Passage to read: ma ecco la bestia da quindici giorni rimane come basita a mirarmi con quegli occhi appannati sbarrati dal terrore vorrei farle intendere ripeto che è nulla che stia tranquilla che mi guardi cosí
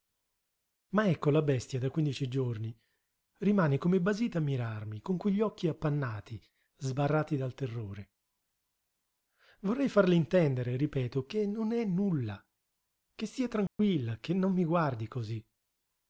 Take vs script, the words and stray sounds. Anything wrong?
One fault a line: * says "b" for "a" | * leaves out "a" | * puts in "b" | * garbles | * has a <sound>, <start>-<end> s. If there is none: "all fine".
* puts in "non"
* has a dropout, 13.7-13.8 s
* puts in "non"